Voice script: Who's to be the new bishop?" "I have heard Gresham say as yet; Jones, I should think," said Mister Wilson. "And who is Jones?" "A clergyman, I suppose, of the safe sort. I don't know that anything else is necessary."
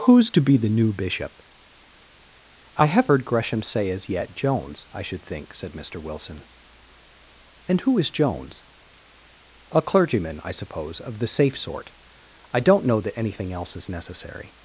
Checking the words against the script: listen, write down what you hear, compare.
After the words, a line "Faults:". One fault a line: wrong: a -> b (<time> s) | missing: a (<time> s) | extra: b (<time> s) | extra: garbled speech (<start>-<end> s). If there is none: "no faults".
Who's to be the new bishop?" "I have heard Gresham say as yet; Jones, I should think," said Mister Wilson. "And who is Jones?" "A clergyman, I suppose, of the safe sort. I don't know that anything else is necessary."
Faults:
no faults